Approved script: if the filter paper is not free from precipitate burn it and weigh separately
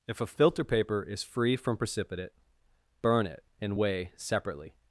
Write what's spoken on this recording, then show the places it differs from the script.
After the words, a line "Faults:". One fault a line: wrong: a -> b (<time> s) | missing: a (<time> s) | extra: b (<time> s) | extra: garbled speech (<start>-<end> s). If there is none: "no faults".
if a filter paper is free from precipitate burn it and weigh separately
Faults:
wrong: the -> a (0.2 s)
missing: not (1.2 s)